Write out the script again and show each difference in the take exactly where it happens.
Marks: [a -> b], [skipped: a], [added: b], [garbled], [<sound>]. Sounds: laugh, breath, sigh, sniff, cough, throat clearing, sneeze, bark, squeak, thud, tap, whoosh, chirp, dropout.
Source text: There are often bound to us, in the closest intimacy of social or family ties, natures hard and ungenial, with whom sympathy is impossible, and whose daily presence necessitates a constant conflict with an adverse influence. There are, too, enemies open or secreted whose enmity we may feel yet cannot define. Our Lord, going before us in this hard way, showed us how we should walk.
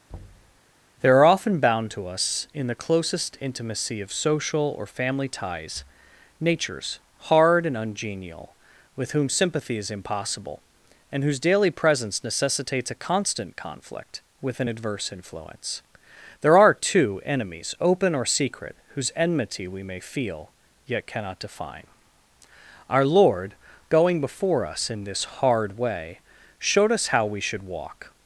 [thud] There are often bound to us, in the closest intimacy of social or family ties, natures hard and ungenial, with whom sympathy is impossible, and whose daily presence necessitates a constant conflict with an adverse influence. There are, too, enemies open or [secreted -> secret] whose enmity we may feel yet cannot define. Our Lord, going before us in this hard way, showed us how we should walk.